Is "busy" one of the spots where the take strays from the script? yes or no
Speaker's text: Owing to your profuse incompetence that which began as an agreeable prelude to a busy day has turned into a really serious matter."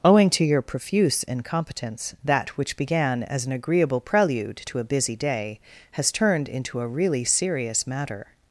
no